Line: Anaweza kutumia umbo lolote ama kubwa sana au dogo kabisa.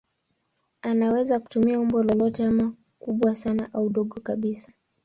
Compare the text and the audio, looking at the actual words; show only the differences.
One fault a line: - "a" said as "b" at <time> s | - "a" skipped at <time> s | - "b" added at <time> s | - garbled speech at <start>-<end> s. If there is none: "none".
none